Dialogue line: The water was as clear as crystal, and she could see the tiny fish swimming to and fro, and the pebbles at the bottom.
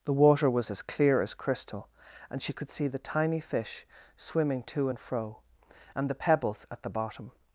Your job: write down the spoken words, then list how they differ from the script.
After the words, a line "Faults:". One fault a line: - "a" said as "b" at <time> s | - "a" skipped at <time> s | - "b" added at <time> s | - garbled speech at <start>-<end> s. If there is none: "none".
The water was as clear as crystal, and she could see the tiny fish swimming to and fro, and the pebbles at the bottom.
Faults:
none